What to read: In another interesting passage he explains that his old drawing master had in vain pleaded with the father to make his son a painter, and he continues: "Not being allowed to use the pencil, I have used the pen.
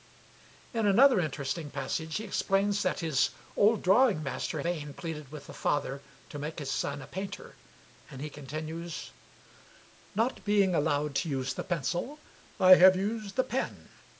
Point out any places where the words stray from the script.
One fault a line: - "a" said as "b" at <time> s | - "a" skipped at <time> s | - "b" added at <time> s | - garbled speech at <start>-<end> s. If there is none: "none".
- "had in" skipped at 4.6 s